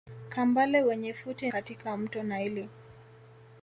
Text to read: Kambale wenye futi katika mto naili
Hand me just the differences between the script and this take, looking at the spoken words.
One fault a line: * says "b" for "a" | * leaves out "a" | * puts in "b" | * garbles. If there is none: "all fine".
all fine